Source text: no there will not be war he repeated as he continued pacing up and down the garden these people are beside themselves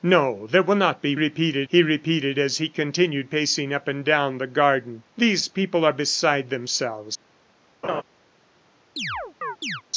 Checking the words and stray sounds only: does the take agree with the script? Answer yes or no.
no